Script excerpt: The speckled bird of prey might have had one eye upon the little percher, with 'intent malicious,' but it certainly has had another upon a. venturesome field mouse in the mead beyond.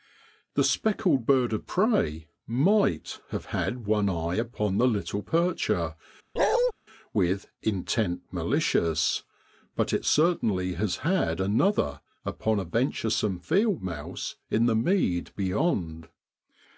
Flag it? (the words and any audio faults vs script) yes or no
yes